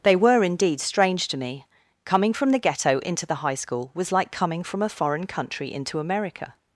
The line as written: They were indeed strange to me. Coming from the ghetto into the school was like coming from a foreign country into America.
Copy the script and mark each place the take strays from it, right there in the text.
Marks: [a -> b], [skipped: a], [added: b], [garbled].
They were indeed strange to me. Coming from the ghetto into the [added: high] school was like coming from a foreign country into America.